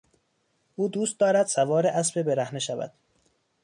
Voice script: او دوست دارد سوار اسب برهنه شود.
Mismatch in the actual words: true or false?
false